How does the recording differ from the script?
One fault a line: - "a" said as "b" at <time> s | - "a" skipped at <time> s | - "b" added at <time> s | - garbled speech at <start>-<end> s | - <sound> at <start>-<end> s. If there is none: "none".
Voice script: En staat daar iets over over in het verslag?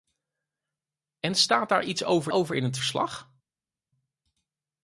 none